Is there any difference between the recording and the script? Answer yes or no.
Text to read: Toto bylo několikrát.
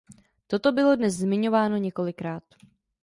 yes